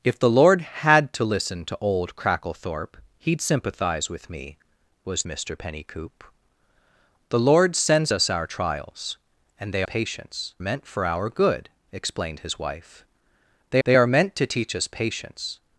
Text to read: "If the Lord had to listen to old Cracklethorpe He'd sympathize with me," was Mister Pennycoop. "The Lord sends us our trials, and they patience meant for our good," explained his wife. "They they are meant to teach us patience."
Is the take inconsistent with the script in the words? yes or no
no